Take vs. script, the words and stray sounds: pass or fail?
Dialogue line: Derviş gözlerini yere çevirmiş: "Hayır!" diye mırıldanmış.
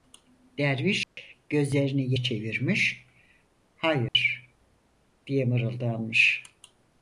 fail